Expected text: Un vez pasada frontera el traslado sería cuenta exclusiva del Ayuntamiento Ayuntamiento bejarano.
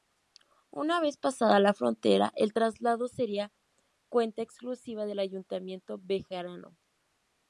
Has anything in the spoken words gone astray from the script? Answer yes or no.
yes